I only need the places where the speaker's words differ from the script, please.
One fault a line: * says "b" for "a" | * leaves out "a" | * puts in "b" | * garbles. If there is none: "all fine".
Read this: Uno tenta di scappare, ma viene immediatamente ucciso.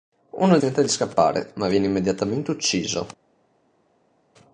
all fine